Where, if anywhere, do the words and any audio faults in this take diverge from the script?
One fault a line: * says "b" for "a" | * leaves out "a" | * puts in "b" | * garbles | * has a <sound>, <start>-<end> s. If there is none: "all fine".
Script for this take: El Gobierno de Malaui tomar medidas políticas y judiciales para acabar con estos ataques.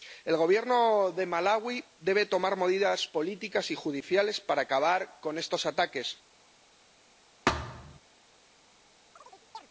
* puts in "debe"
* has a thud, 7.5-8.0 s
* has a chirp, 9.2-9.7 s